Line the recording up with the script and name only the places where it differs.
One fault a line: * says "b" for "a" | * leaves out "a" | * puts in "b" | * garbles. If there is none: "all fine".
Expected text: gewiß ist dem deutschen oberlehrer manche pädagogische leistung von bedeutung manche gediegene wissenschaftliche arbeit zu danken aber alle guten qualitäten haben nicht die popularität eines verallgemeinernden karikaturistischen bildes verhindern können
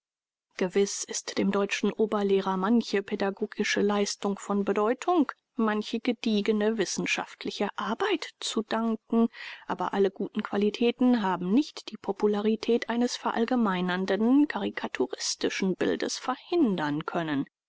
all fine